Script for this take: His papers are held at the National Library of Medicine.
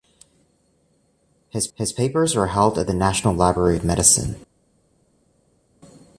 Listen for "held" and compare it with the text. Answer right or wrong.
right